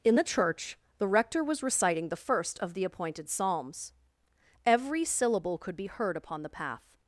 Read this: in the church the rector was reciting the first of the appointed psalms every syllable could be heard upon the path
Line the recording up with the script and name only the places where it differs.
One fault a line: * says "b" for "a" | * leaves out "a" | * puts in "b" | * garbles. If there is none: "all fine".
all fine